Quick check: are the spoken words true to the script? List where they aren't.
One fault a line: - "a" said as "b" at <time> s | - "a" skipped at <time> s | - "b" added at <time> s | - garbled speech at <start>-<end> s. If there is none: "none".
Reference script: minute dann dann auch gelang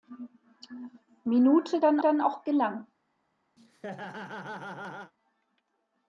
none